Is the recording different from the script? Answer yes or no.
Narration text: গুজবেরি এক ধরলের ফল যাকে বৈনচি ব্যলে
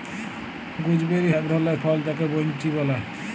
no